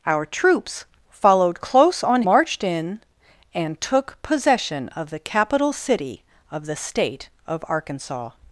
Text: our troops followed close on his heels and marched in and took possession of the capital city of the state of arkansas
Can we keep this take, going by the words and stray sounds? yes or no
no